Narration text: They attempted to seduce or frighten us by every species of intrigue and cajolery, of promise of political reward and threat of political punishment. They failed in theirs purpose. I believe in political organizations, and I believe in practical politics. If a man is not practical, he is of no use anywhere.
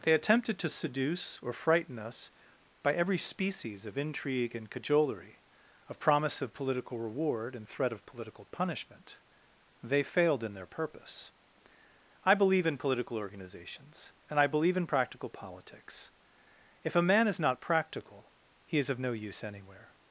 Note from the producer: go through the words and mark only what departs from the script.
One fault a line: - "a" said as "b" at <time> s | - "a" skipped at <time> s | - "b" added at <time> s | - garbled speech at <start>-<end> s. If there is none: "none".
- "theirs" said as "their" at 10.5 s